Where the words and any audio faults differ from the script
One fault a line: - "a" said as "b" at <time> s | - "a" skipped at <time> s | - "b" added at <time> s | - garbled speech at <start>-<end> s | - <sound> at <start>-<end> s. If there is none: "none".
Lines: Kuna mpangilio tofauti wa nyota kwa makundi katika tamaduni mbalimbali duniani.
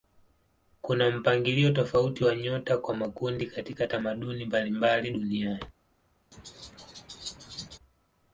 - laugh at 6.3-7.8 s